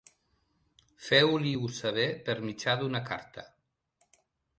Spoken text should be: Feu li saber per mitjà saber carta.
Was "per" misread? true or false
false